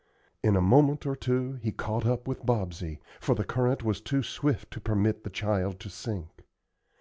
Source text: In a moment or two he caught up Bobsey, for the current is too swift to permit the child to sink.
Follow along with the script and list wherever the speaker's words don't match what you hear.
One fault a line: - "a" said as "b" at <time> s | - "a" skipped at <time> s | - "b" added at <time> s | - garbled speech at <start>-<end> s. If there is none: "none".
- "with" added at 2.3 s
- "is" said as "was" at 3.8 s